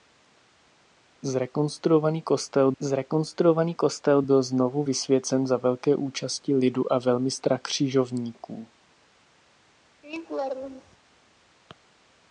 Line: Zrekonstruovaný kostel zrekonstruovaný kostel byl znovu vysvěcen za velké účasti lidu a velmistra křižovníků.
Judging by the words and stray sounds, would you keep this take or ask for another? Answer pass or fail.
fail